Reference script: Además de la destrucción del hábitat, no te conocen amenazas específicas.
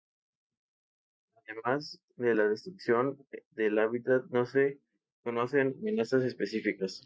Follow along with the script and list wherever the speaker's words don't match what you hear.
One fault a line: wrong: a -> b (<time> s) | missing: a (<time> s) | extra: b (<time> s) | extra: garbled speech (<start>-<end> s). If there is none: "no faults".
wrong: te -> se (4.4 s)